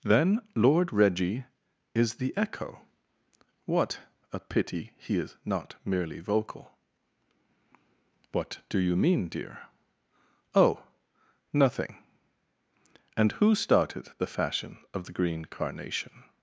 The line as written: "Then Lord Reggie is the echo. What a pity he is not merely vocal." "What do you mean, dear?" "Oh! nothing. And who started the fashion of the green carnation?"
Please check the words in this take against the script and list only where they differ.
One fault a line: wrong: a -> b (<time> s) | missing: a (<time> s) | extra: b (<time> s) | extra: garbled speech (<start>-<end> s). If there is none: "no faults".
no faults